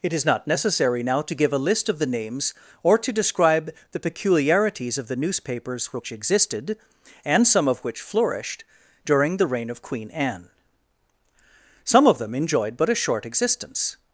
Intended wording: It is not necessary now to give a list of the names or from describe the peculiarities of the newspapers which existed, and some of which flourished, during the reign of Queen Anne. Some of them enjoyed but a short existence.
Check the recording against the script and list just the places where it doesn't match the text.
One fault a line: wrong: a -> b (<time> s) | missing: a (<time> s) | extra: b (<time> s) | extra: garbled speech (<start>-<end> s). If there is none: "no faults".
wrong: from -> to (3.0 s)